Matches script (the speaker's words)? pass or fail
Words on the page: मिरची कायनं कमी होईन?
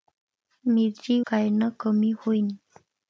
pass